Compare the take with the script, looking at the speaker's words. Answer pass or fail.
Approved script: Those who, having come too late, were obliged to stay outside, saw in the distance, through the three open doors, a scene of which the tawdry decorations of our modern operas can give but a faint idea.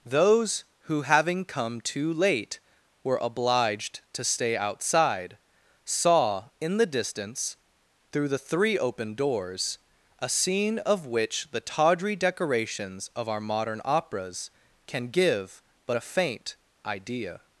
pass